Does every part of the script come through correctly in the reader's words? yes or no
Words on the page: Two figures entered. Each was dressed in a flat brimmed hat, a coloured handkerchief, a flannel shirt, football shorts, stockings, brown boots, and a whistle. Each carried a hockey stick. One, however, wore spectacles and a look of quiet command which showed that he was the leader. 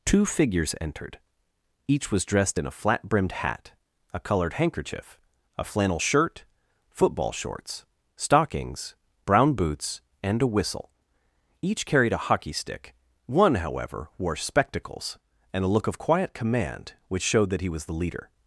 yes